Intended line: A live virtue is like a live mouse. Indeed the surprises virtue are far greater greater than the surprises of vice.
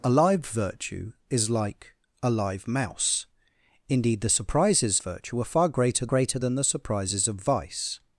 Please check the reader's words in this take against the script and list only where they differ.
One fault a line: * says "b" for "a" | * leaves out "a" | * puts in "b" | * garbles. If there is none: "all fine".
all fine